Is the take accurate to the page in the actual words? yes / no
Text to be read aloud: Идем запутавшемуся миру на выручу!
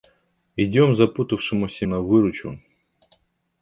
no